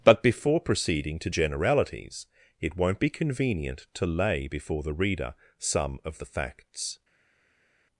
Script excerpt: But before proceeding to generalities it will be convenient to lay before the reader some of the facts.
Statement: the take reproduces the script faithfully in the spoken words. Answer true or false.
false